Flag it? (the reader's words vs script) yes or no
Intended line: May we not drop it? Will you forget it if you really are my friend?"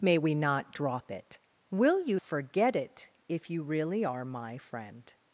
no